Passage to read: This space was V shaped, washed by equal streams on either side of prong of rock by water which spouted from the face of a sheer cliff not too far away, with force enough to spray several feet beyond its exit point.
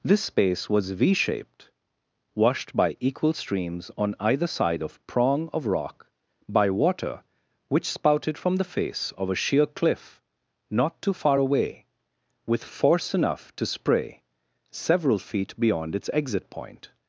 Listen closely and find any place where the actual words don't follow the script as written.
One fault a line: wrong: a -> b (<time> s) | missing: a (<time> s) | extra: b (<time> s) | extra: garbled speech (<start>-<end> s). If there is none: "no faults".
no faults